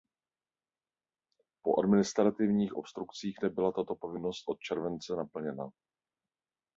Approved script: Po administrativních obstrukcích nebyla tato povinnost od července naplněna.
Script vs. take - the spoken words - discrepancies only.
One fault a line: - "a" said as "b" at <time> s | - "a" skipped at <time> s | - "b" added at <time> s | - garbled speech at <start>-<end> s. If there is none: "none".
none